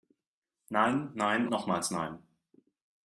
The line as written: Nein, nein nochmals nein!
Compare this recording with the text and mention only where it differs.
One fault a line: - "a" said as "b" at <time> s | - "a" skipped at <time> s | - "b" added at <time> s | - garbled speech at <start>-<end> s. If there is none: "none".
none